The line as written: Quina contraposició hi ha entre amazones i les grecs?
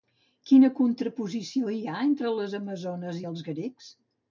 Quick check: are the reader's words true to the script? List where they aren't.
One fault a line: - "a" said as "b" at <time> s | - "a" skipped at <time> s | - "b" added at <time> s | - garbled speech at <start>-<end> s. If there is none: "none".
- "les" added at 2.4 s
- "les" said as "els" at 3.4 s